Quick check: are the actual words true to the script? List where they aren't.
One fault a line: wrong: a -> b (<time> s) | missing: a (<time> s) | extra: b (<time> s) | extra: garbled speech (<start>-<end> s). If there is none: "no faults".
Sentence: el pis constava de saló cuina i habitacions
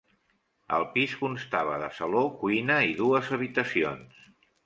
extra: dues (3.0 s)